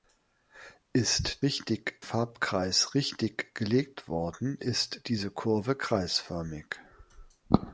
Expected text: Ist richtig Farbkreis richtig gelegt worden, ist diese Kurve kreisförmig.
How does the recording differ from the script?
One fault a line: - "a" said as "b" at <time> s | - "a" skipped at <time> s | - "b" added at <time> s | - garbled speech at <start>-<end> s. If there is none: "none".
none